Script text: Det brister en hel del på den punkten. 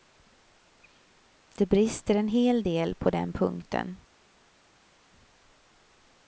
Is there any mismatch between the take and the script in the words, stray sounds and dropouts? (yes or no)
no